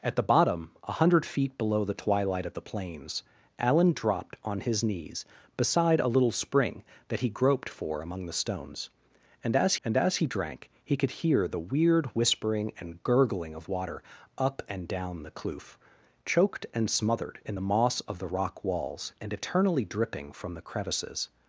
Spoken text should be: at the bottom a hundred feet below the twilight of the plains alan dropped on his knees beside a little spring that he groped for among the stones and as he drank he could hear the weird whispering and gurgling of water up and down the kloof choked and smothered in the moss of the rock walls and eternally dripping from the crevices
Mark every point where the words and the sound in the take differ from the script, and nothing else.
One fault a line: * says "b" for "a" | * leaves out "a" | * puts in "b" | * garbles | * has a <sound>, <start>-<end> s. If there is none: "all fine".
* puts in "and as"